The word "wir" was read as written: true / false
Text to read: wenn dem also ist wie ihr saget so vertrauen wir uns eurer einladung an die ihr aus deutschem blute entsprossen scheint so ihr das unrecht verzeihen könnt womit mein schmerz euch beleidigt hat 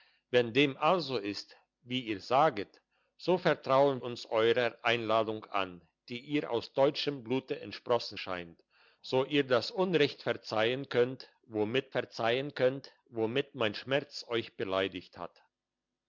false